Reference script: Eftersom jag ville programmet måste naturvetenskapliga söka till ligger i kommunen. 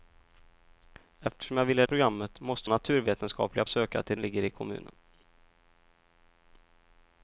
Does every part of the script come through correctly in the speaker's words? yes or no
yes